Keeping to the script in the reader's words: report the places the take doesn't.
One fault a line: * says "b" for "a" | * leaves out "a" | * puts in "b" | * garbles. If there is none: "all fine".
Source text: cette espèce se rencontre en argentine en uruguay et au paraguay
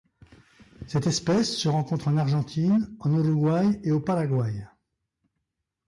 all fine